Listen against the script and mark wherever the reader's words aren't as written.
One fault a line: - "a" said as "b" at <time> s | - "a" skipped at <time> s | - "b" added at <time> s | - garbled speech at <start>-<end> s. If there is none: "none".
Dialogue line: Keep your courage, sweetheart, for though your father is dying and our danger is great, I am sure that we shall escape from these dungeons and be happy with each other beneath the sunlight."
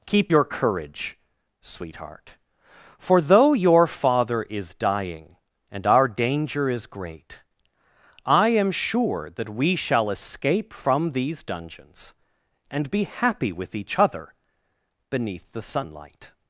none